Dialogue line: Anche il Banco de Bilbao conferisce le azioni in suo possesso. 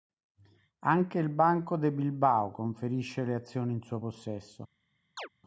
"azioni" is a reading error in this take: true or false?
false